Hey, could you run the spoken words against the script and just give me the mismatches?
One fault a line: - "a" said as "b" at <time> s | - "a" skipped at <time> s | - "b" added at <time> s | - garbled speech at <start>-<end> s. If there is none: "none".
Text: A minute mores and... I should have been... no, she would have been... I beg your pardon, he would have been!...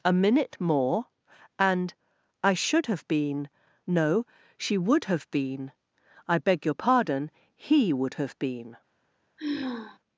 - "mores" said as "more" at 0.6 s